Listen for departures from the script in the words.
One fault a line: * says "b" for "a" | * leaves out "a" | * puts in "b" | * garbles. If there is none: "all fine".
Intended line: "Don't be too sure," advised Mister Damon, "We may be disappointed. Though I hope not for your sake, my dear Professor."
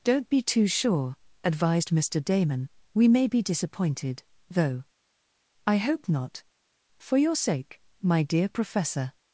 all fine